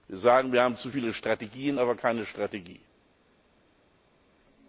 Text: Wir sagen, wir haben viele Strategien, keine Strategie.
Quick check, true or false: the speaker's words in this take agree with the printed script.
false